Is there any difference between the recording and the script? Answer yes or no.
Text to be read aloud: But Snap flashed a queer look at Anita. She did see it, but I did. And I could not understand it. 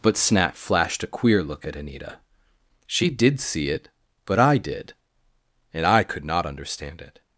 no